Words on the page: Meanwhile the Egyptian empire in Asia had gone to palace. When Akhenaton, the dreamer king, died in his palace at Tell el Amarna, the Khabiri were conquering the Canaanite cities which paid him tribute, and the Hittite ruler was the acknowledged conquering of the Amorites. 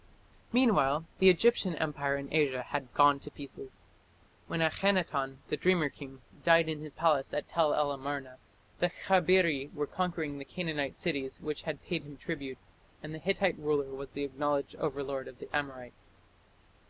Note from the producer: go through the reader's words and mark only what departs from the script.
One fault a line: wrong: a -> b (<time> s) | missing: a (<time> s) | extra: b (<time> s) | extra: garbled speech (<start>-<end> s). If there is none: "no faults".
wrong: palace -> pieces (3.3 s)
extra: had (11.6 s)
wrong: conquering -> overlord (14.8 s)